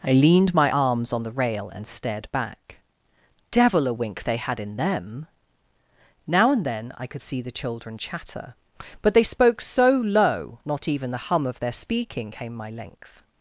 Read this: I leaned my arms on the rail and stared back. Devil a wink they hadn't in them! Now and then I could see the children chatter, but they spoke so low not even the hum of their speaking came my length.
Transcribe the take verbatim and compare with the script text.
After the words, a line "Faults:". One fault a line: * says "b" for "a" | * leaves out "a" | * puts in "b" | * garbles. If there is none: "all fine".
I leaned my arms on the rail and stared back. Devil a wink they had in them! Now and then I could see the children chatter, but they spoke so low not even the hum of their speaking came my length.
Faults:
* says "had" for "hadn't"